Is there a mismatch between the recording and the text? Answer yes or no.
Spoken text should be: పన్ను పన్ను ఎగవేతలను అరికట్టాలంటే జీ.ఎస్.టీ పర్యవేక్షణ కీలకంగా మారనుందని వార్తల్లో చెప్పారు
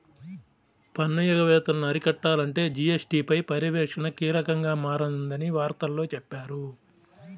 yes